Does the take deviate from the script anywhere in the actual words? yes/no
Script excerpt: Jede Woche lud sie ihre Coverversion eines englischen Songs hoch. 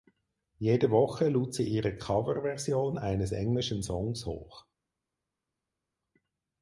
no